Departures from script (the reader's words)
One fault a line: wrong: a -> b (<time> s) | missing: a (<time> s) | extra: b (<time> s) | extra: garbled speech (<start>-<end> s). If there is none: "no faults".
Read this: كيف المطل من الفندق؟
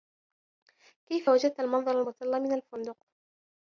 extra: وجدت المنظر (1.3 s)